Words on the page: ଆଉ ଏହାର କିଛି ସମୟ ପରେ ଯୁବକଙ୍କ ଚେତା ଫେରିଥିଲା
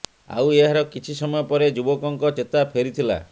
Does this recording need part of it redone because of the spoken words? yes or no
no